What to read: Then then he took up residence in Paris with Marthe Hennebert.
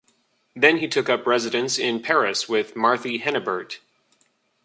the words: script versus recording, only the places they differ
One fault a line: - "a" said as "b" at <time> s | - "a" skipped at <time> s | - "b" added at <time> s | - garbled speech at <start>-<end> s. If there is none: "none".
- "then" skipped at 0.8 s